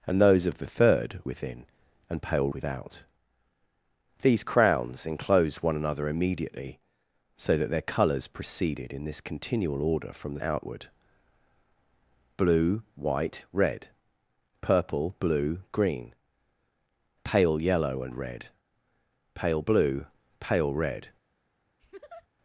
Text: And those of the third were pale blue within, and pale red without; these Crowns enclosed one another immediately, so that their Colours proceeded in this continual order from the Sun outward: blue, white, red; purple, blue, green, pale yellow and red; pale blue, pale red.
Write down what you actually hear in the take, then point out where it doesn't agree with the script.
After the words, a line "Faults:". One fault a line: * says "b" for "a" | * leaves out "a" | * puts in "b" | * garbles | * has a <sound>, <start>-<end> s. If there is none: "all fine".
And those of the third within, and pale without; these Crowns enclosed one another immediately, so that their Colours proceeded in this continual order from the Outward: blue, white, red; purple, blue, green, pale yellow and red; pale blue, pale red.
Faults:
* leaves out "were pale blue"
* leaves out "red"
* leaves out "Sun"
* has a laugh, 21.8-22.3 s